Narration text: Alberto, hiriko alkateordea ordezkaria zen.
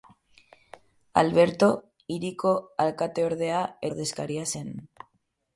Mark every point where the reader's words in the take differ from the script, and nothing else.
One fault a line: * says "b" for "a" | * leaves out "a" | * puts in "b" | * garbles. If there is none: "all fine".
all fine